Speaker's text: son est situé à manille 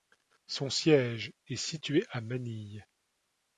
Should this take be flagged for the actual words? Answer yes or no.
yes